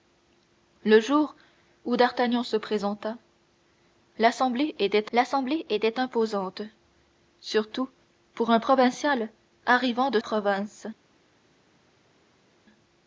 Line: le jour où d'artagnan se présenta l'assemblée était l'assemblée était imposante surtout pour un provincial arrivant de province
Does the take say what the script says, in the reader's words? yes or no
yes